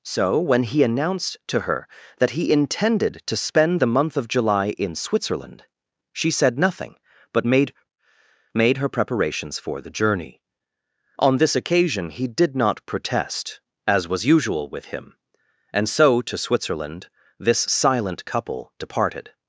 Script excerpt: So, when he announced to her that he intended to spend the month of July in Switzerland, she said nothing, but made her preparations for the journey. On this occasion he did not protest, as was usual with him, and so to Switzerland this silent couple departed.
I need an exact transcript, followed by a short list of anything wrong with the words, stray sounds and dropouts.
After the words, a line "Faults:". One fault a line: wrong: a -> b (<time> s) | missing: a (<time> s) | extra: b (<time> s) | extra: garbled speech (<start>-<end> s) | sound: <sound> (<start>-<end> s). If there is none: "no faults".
So, when he announced to her that he intended to spend the month of July in Switzerland, she said nothing, but made made her preparations for the journey. On this occasion he did not protest, as was usual with him, and so to Switzerland this silent couple departed.
Faults:
extra: made (8.5 s)